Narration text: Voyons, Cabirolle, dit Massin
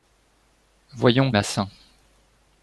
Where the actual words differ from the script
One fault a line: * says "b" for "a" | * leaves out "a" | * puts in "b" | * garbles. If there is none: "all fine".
* leaves out "Cabirolle dit"